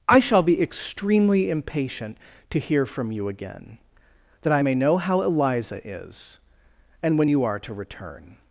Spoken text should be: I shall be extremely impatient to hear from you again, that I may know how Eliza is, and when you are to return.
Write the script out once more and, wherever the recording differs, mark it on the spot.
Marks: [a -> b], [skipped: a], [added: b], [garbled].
I shall be extremely impatient to hear from you again, that I may know how Eliza is, and when you are to return.